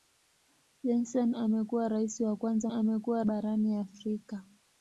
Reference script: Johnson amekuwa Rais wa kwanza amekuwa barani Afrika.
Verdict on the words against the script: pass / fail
pass